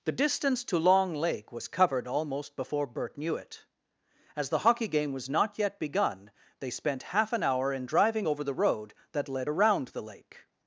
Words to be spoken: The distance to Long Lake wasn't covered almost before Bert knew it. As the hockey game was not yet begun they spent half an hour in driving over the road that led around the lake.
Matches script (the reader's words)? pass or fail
fail